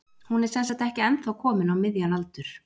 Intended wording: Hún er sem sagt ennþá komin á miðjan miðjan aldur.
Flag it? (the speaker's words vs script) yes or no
yes